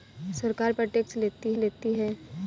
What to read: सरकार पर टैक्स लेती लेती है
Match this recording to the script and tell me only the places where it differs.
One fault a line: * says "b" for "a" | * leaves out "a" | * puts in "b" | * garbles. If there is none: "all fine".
all fine